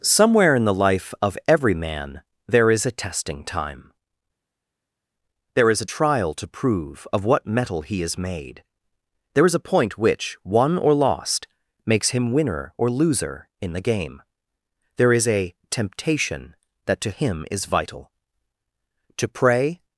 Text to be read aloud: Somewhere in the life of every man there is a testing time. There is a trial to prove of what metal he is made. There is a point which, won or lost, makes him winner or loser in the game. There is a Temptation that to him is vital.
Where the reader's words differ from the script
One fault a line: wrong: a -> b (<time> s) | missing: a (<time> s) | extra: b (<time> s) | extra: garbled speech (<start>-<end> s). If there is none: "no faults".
extra: To pray (19.2 s)